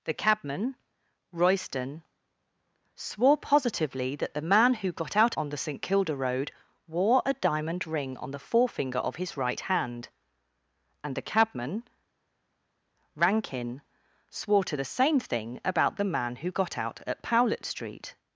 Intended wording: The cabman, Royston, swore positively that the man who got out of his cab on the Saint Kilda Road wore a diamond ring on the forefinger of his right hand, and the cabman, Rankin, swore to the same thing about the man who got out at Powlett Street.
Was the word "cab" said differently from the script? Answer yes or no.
yes